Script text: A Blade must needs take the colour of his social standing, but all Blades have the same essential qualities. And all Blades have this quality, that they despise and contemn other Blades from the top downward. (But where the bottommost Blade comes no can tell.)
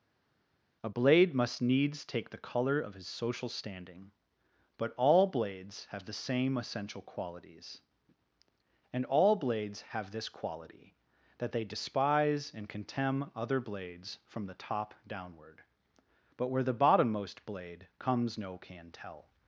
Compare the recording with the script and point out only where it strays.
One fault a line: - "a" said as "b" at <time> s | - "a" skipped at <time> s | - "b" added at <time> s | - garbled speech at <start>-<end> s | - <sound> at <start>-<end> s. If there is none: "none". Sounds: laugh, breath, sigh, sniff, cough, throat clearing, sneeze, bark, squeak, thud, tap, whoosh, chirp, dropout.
none